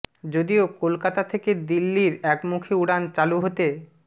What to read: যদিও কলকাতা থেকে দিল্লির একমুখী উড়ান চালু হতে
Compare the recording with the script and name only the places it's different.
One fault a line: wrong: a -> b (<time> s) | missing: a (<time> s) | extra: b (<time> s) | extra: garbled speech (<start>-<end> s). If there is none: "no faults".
no faults